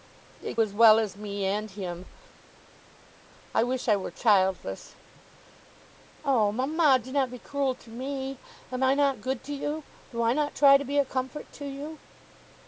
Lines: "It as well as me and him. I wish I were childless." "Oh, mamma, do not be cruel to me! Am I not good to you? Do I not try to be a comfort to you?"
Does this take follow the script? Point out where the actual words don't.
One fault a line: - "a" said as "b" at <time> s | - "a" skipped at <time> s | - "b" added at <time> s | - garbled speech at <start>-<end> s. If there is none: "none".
none